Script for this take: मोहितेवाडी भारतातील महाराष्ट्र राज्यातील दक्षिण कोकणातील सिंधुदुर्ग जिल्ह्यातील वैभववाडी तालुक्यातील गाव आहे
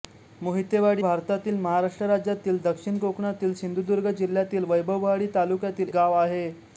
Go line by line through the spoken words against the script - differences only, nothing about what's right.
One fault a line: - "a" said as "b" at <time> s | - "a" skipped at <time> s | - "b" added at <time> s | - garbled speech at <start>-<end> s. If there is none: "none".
none